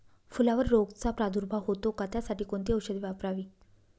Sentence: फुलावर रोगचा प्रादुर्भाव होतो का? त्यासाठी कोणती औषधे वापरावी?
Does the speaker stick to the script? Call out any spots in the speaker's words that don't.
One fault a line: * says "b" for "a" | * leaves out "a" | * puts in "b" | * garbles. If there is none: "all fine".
all fine